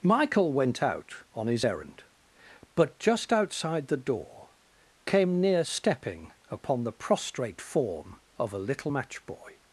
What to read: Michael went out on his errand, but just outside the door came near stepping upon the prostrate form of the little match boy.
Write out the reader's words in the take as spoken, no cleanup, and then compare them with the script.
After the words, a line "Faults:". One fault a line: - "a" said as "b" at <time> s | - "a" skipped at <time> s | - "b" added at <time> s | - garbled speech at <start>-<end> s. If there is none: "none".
Michael went out on his errand, but just outside the door came near stepping upon the prostrate form of a little match boy.
Faults:
- "the" said as "a" at 8.5 s